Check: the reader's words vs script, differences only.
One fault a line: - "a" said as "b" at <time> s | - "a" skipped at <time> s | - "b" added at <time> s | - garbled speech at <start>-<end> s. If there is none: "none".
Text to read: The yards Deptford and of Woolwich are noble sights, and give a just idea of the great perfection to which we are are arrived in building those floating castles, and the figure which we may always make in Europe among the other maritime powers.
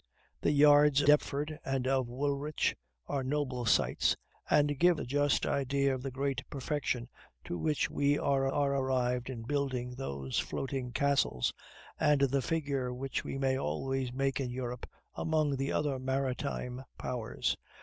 none